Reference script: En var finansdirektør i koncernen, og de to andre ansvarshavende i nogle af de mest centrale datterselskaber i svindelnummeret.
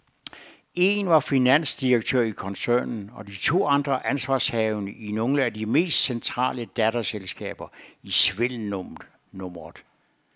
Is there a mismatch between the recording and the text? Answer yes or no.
no